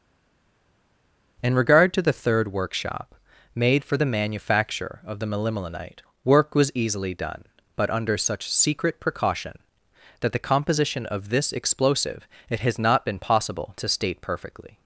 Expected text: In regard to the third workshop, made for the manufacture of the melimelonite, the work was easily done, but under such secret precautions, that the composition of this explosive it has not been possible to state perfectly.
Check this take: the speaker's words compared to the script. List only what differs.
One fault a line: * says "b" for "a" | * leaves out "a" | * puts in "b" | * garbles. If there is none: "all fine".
* leaves out "the"
* says "precaution" for "precautions"